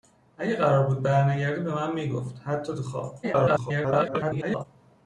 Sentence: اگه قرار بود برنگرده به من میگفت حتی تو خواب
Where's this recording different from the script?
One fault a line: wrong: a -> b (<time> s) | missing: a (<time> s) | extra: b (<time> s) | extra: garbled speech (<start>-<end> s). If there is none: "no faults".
extra: garbled speech (3.2-4.6 s)